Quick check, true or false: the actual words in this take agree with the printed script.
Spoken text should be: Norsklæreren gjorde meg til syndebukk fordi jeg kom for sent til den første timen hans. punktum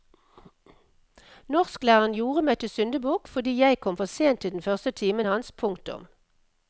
true